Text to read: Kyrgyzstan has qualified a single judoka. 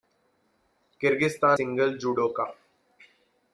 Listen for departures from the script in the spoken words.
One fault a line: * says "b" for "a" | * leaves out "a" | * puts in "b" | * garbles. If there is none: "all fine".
* leaves out "has qualified a"